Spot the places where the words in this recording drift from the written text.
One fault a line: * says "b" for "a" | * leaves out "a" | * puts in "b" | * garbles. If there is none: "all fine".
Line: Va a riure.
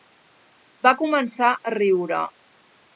* puts in "començar"